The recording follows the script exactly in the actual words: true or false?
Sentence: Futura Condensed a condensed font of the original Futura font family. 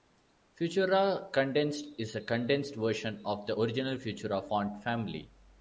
false